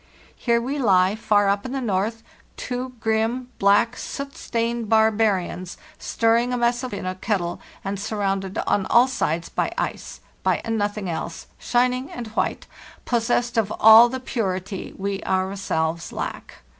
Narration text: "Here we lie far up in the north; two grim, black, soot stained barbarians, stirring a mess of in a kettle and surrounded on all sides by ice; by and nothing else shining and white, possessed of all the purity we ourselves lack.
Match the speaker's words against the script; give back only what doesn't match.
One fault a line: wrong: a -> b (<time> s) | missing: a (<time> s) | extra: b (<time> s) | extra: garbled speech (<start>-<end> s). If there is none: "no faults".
no faults